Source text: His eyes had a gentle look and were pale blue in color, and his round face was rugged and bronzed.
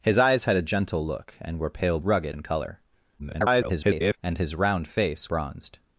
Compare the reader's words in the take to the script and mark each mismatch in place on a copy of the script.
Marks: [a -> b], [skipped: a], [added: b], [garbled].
His eyes had a gentle look and were pale [blue -> rugged] in color, [garbled] and his round face [skipped: was rugged and] bronzed.